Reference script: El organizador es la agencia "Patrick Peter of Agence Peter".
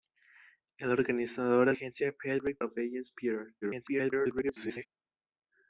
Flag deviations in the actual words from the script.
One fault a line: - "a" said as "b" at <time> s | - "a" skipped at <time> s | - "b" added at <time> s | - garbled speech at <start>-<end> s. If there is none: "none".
- "la" skipped at 1.8 s
- "Peter" skipped at 2.6 s
- garbled speech at 3.6-4.9 s